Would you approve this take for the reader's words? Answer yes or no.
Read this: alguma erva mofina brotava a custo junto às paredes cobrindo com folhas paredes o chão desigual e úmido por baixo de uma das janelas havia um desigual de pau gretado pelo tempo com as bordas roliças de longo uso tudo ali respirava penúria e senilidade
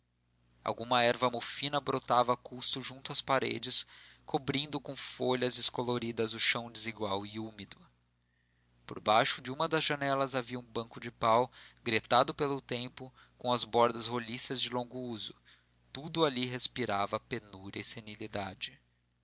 no